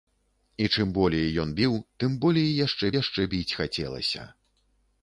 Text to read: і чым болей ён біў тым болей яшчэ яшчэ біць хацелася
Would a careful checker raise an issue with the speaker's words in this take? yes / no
no